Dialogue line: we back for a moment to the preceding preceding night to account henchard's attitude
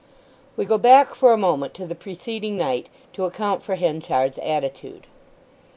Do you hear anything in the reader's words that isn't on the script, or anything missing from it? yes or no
yes